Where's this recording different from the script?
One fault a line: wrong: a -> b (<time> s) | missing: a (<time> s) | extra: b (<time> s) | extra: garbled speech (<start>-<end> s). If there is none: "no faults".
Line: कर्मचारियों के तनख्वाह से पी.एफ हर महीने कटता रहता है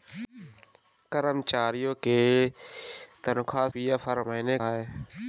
missing: से (3.7 s)
missing: कटता रहता (4.6 s)